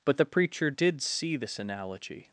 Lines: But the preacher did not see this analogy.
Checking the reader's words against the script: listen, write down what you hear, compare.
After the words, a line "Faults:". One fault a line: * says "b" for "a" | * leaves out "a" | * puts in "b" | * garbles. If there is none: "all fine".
But the preacher did see this analogy.
Faults:
* leaves out "not"